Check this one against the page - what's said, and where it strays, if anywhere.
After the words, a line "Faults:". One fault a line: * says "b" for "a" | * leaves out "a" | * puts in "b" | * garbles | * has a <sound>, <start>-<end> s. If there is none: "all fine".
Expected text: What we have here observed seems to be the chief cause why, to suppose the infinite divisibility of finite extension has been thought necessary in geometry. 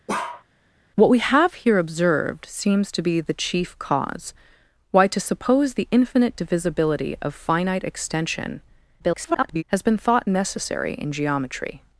What we have here observed seems to be the chief cause why, to suppose the infinite divisibility of finite extension [garbled] has been thought necessary in geometry.
Faults:
* has a bark, 0.1-0.4 s
* garbles